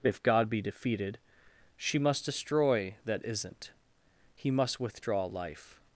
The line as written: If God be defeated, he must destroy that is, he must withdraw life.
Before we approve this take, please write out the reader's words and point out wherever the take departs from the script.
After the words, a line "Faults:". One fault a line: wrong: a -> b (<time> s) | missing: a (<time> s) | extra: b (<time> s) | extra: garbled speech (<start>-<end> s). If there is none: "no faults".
If God be defeated, she must destroy that isn't, he must withdraw life.
Faults:
wrong: he -> she (1.8 s)
wrong: is -> isn't (3.2 s)